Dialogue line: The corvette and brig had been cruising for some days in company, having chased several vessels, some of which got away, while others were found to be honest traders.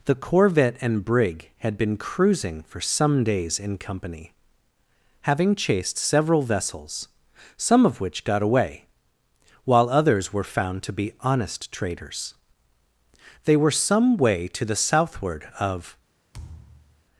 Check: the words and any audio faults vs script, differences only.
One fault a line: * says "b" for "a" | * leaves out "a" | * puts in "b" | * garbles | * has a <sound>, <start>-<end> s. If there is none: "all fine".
* puts in "They were some way to the southward of"
* has a thud, 16.3-17.0 s